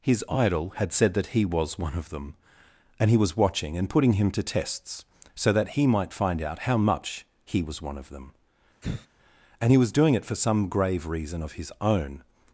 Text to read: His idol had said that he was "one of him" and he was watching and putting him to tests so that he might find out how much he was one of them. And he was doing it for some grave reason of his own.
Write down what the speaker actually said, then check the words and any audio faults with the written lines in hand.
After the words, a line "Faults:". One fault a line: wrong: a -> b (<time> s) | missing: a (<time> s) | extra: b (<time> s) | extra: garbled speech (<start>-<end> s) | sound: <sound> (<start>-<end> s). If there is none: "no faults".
His idol had said that he was "one of them" and he was watching and putting him to tests so that he might find out how much he was one of them. And he was doing it for some grave reason of his own.
Faults:
wrong: him -> them (2.1 s)
sound: sigh (8.8-9.1 s)